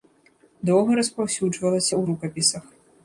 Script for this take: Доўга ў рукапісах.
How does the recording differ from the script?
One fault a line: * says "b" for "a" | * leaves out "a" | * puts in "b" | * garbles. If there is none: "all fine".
* puts in "распаўсюджвалася"